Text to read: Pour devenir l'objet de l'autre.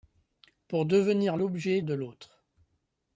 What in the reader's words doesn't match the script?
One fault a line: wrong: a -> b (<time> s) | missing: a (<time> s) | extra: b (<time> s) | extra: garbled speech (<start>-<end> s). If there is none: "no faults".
no faults